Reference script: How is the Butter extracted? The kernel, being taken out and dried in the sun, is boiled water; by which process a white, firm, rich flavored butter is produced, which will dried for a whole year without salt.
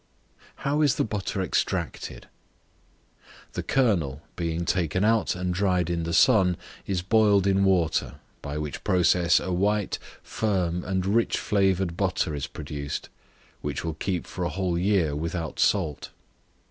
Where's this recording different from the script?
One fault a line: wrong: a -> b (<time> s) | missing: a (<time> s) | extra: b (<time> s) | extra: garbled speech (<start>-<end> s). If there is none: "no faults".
extra: in (7.5 s)
extra: and (10.8 s)
wrong: dried -> keep (13.9 s)